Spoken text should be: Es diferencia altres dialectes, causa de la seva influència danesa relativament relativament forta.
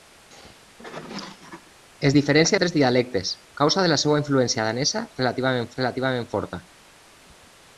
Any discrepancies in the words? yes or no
no